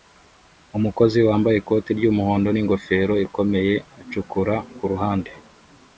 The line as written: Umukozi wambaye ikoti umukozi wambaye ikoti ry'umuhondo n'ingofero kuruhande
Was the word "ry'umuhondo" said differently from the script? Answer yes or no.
yes